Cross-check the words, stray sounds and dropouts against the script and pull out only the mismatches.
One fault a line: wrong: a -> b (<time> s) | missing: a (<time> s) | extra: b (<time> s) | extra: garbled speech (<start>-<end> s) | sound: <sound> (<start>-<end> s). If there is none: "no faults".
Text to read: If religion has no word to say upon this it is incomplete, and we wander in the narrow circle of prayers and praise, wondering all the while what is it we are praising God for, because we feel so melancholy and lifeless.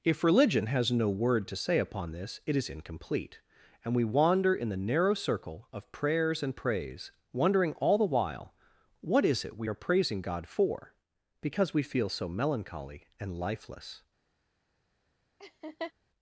sound: laugh (15.4-15.9 s)